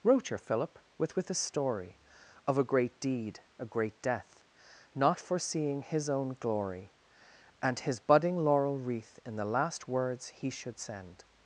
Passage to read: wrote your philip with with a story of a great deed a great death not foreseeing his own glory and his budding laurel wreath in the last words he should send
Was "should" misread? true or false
false